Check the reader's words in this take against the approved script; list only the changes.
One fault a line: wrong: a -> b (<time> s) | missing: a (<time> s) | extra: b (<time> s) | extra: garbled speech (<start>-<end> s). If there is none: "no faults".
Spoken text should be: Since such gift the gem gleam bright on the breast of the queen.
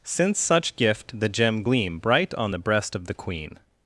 no faults